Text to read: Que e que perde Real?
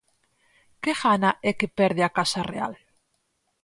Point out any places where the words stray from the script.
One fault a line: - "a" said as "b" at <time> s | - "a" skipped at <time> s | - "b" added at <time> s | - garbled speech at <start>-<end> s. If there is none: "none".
- "gana" added at 1.0 s
- "a Casa" added at 2.0 s